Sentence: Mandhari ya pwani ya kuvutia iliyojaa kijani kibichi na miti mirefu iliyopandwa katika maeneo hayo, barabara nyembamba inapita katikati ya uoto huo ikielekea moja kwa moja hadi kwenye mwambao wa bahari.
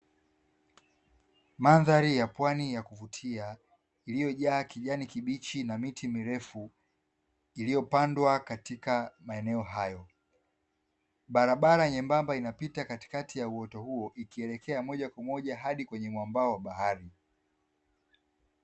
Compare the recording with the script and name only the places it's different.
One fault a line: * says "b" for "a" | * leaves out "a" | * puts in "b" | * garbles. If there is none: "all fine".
all fine